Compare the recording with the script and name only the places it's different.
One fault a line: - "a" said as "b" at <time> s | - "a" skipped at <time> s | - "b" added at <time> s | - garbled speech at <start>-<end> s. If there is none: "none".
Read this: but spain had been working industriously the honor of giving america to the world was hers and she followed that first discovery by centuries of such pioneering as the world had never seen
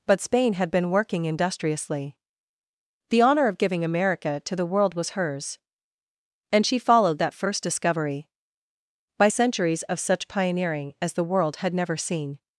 none